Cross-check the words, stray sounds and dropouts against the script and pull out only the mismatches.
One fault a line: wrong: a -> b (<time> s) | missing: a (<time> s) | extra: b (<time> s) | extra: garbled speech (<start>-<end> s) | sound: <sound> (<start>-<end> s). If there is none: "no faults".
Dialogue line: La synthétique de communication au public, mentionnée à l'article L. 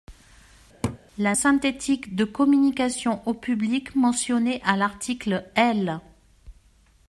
sound: laugh (0.8-1.0 s)